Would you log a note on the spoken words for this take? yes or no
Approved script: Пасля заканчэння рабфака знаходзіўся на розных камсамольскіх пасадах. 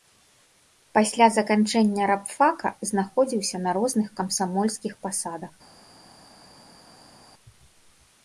no